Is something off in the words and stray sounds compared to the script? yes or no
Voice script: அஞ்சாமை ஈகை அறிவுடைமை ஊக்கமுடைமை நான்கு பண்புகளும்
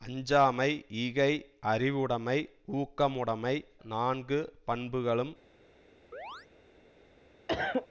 yes